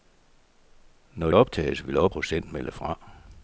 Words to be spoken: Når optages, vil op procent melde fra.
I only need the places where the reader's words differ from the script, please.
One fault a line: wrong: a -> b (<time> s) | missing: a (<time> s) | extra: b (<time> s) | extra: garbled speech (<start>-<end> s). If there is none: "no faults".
no faults